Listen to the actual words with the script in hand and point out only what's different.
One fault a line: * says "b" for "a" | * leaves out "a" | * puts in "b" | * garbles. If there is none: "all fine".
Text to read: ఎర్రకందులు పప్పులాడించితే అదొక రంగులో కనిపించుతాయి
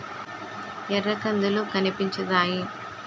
* leaves out "పప్పులాడించితే అదొక రంగులో"